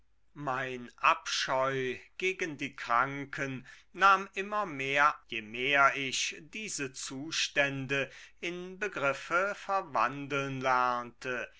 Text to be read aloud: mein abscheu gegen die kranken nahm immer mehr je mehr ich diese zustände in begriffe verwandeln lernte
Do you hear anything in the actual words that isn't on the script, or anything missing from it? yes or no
no